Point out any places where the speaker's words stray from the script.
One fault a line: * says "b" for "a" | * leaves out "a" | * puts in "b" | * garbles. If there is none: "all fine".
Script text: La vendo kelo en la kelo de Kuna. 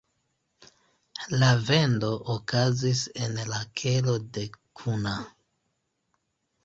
* says "okazis" for "kelo"